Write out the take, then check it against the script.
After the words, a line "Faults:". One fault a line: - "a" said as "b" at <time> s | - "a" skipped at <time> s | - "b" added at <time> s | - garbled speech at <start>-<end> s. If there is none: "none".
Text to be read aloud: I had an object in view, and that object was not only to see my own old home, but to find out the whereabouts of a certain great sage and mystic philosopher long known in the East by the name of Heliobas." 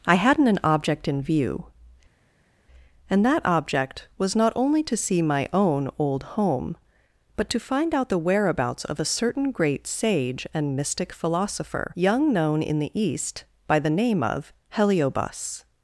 I hadn't an object in view, and that object was not only to see my own old home, but to find out the whereabouts of a certain great sage and mystic philosopher young known in the East by the name of Heliobas."
Faults:
- "had" said as "hadn't" at 0.1 s
- "long" said as "young" at 12.0 s